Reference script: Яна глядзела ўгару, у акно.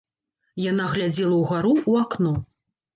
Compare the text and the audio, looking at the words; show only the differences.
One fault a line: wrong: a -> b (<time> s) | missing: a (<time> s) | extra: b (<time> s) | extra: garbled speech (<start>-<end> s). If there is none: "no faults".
no faults